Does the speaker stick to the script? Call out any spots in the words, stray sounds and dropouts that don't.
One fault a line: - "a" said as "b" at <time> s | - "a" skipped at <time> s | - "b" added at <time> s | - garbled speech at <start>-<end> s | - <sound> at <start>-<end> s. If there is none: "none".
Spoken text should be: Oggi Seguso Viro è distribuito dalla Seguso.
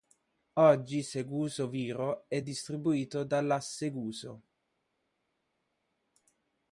none